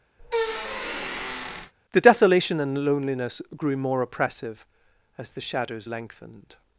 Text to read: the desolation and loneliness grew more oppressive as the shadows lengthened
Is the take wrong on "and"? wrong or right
right